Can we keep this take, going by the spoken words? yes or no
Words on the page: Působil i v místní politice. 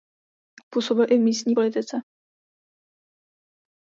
yes